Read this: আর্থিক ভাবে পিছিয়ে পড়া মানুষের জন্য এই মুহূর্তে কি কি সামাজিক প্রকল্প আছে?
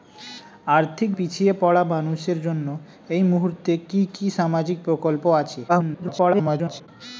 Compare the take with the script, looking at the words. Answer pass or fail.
fail